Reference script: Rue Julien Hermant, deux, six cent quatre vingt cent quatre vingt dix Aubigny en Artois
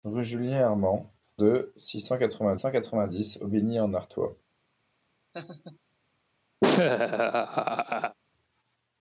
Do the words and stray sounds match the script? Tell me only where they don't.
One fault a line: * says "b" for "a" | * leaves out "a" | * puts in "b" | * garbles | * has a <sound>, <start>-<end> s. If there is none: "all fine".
* has a laugh, 5.3-5.8 s
* has a laugh, 6.6-8.2 s